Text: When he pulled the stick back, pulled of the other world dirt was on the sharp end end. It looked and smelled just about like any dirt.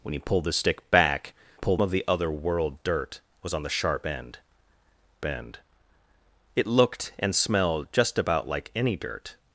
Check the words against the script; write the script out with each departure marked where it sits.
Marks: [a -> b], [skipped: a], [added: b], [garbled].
When he pulled the stick back, pulled of the other world dirt was on the sharp end end. It looked and smelled just about like any dirt.